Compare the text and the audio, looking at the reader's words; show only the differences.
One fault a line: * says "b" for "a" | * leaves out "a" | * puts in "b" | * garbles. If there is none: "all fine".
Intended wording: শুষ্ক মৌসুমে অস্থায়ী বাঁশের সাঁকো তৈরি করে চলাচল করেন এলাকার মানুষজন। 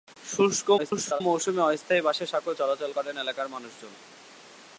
* garbles
* leaves out "তৈরি করে"